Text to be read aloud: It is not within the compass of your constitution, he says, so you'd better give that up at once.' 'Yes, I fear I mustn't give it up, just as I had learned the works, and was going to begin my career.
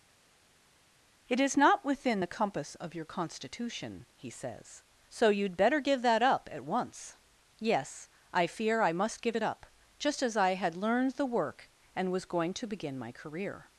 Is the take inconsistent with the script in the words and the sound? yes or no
yes